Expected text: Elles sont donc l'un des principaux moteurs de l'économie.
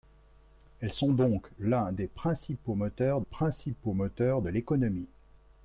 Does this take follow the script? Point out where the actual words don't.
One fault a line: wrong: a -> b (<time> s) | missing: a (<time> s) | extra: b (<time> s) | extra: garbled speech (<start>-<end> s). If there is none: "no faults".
extra: principaux moteurs (3.2 s)